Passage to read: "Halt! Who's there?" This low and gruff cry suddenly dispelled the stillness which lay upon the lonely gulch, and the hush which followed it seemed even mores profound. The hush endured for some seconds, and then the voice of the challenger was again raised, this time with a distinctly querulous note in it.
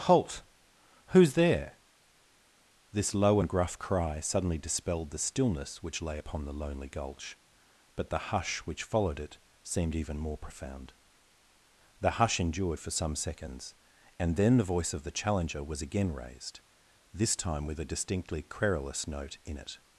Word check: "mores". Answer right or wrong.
wrong